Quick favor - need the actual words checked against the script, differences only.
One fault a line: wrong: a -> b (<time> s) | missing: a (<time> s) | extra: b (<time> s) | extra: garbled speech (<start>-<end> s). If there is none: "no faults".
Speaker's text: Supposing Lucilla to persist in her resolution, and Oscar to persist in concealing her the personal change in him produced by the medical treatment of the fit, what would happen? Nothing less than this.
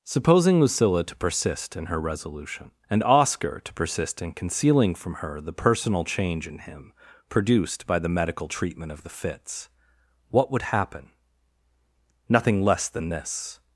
extra: from (5.0 s)
wrong: fit -> fits (9.1 s)